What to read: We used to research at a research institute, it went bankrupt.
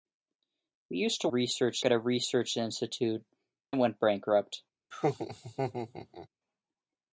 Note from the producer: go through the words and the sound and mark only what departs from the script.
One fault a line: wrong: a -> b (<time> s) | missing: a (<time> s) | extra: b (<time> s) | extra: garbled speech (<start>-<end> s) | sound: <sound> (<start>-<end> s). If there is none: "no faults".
sound: laugh (4.9-6.3 s)